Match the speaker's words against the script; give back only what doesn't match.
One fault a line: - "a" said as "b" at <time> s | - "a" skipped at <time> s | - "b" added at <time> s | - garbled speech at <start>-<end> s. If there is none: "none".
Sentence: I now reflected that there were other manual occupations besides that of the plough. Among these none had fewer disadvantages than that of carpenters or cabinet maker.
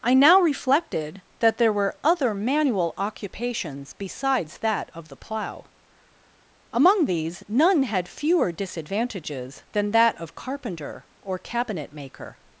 - "carpenters" said as "carpenter" at 10.3 s